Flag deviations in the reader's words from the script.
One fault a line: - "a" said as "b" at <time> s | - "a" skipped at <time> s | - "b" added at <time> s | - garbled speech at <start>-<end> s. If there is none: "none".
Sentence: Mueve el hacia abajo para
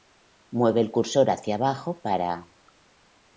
- "cursor" added at 0.9 s